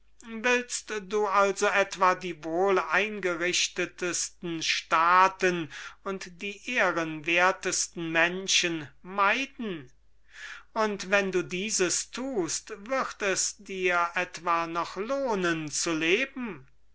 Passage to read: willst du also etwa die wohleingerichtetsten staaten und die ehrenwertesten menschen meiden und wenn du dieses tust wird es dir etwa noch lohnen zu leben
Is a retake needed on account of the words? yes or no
no